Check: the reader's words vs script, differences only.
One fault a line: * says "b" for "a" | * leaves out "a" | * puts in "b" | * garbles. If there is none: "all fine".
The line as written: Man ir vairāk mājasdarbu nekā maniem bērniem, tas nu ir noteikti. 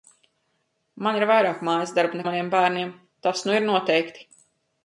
* leaves out "nekā"